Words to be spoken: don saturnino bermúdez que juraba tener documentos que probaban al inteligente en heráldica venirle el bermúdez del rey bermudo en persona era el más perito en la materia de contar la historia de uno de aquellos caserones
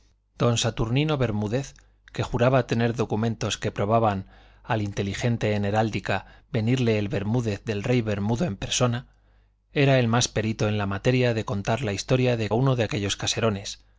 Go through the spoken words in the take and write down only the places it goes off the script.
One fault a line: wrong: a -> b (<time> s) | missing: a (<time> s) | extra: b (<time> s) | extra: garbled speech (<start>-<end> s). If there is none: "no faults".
no faults